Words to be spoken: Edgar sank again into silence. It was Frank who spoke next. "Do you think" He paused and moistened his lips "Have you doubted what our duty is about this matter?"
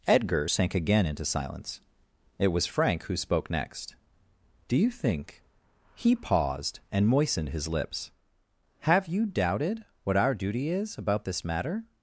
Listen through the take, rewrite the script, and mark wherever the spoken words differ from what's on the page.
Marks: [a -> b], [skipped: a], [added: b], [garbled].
Edgar sank again into silence. It was Frank who spoke next. "Do you think" He paused and moistened his lips "Have you doubted what our duty is about this matter?"